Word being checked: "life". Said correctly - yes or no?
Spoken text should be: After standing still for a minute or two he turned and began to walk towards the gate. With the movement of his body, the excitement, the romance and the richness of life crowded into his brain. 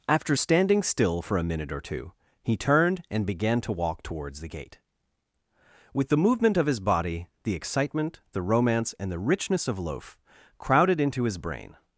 no